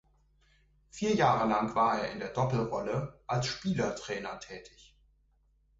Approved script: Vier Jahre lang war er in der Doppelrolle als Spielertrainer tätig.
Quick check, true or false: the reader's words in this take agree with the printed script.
true